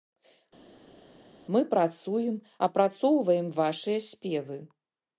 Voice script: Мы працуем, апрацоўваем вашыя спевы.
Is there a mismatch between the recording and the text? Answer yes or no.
no